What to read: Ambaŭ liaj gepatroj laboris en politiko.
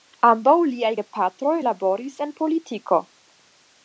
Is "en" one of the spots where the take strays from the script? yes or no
no